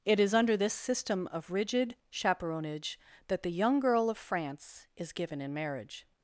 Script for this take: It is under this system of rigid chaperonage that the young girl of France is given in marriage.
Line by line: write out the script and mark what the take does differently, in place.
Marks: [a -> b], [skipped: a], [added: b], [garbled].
It is under this system of rigid chaperonage that the young girl of France is given in marriage.